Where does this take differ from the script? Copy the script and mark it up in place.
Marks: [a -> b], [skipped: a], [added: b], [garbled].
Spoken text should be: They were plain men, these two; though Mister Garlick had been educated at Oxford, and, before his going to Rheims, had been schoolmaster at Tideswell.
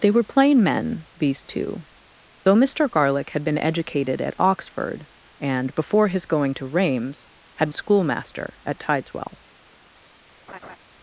They were plain men, these two; though Mister Garlick had been educated at Oxford, and, before his going to Rheims, had [skipped: been] schoolmaster at Tideswell.